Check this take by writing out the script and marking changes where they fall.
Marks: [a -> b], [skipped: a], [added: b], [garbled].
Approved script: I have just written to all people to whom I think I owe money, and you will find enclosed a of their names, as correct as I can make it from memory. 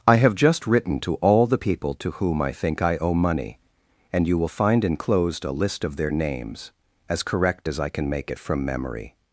I have just written to all [added: the] people to whom I think I owe money, and you will find enclosed a [added: list] of their names, as correct as I can make it from memory.